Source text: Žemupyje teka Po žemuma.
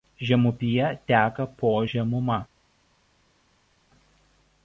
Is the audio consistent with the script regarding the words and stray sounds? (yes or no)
yes